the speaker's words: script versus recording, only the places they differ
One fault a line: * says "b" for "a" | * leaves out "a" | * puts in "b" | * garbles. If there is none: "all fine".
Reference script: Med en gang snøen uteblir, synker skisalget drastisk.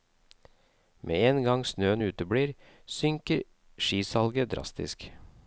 all fine